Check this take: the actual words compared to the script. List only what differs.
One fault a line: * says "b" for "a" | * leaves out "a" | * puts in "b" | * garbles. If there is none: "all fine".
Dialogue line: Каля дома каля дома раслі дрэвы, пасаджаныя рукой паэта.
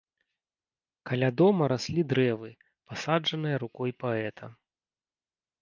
* leaves out "каля дома"